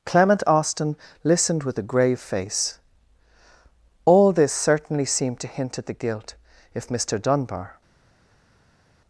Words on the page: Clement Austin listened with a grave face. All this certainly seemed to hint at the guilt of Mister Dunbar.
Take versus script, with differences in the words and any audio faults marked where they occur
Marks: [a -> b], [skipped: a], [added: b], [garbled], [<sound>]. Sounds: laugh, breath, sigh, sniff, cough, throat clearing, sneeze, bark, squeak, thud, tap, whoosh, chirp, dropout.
Clement Austin listened with a grave face. All this certainly seemed to hint at the guilt [of -> if] Mister Dunbar.